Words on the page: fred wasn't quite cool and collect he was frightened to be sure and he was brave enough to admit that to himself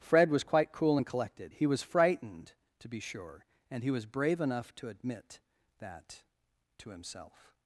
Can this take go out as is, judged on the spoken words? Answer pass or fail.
fail